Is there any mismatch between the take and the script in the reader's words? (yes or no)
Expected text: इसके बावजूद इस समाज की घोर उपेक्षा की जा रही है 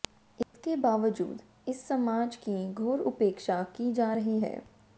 no